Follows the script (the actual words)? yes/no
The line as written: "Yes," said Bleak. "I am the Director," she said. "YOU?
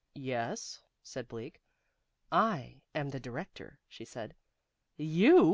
yes